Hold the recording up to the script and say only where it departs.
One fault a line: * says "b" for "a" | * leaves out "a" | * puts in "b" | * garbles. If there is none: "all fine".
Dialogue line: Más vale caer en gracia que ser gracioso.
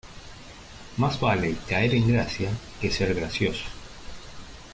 all fine